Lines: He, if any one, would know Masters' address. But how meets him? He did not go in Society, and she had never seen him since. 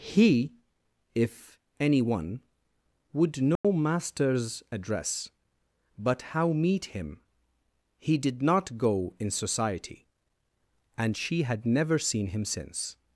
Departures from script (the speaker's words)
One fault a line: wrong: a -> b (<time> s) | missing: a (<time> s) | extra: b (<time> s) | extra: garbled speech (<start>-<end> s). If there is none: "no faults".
wrong: meets -> meet (6.5 s)